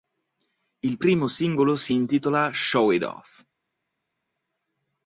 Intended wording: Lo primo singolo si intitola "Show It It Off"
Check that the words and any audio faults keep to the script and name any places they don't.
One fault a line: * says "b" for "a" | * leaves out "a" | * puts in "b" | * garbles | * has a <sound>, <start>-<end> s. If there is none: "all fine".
* says "Il" for "Lo"
* leaves out "It"